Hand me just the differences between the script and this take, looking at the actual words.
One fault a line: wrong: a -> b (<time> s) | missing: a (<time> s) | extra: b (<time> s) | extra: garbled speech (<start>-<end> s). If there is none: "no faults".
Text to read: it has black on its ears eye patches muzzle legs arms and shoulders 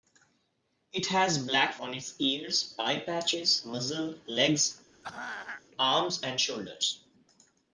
no faults